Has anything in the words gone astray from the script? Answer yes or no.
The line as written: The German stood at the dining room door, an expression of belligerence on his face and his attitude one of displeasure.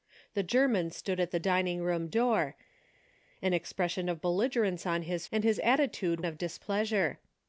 yes